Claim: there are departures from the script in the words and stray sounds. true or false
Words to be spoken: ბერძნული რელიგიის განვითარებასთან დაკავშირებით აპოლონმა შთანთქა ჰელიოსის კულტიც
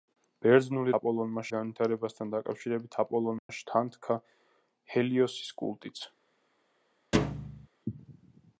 true